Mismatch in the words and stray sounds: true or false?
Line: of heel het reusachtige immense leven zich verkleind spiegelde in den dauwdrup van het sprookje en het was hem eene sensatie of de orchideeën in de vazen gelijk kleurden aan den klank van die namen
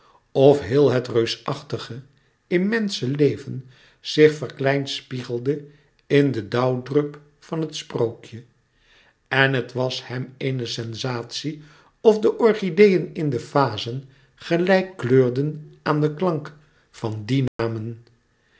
true